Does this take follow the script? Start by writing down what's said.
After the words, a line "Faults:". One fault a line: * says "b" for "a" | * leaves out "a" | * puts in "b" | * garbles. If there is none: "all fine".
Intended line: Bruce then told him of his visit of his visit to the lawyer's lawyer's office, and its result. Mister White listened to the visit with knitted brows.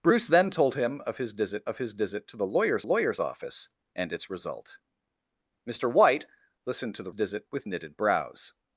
Bruce then told him of his visit of his visit to the lawyer's lawyer's office, and its result. Mister White listened to the visit with knitted brows.
Faults:
all fine